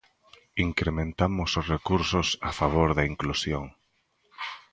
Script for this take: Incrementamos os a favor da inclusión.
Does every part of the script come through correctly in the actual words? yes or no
no